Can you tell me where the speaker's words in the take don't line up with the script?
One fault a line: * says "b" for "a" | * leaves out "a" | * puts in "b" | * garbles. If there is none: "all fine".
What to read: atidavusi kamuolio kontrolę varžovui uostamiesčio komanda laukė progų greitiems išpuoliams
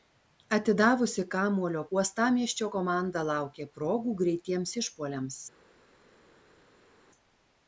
* leaves out "kontrolę varžovui"